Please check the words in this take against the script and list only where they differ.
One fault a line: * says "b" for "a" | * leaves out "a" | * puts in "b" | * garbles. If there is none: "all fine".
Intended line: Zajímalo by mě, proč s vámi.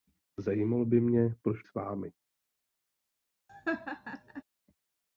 all fine